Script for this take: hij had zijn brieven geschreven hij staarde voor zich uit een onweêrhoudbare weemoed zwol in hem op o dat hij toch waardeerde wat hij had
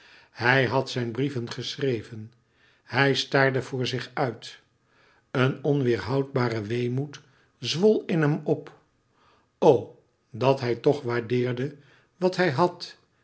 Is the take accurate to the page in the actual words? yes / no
yes